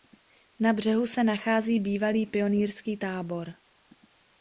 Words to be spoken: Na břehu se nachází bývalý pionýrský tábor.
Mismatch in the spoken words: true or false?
false